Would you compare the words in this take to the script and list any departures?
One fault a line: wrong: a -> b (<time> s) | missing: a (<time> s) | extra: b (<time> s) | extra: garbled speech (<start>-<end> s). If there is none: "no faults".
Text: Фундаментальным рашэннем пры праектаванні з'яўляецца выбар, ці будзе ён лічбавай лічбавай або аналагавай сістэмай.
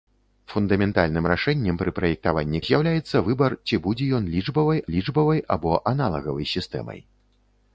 no faults